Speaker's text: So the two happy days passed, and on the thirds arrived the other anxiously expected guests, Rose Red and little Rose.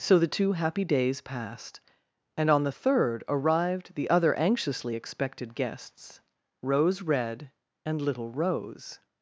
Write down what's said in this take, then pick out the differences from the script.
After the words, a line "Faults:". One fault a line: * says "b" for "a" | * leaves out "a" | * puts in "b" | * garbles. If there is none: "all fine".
So the two happy days passed, and on the third arrived the other anxiously expected guests, Rose Red and little Rose.
Faults:
* says "third" for "thirds"